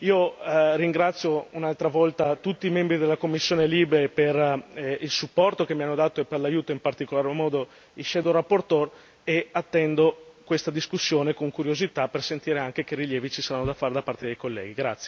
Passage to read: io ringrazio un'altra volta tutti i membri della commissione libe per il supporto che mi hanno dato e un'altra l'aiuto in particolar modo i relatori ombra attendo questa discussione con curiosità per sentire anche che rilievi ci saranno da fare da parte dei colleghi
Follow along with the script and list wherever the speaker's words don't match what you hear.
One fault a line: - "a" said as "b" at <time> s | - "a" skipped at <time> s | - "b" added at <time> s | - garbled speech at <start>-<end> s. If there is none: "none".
- "un'altra" said as "per" at 6.3 s
- "e" added at 9.3 s